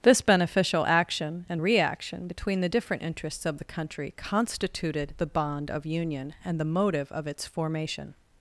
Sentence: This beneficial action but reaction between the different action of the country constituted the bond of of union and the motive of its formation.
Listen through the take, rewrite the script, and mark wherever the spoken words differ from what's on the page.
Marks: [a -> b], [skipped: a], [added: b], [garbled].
This beneficial action [but -> and] reaction between the different [action -> interests] of the country constituted the bond of [skipped: of] union and the motive of its formation.